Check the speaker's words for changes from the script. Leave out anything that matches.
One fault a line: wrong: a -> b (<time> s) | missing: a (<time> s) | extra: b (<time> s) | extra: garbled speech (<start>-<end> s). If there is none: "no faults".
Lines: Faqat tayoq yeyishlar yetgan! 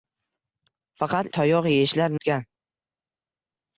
no faults